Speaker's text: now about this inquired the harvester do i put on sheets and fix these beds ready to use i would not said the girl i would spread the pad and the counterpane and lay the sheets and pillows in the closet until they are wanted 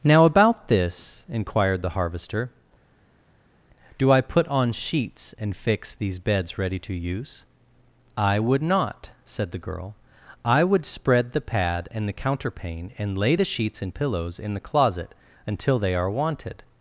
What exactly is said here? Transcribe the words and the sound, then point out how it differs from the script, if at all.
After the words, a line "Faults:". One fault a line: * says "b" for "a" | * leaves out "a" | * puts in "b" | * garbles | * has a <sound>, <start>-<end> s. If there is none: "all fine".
now about this inquired the harvester do i put on sheets and fix these beds ready to use i would not said the girl i would spread the pad and the counterpane and lay the sheets and pillows in the closet until they are wanted
Faults:
all fine